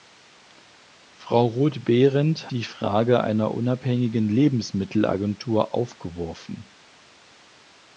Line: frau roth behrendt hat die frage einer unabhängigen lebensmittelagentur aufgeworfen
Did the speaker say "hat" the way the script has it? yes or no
no